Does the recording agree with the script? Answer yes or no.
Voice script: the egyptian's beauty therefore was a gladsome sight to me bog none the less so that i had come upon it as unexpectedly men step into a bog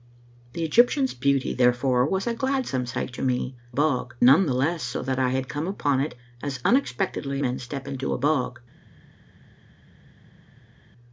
yes